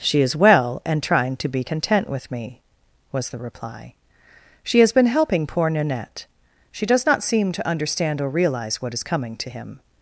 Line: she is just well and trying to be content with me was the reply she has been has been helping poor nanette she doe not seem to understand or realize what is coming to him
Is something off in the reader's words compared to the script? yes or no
yes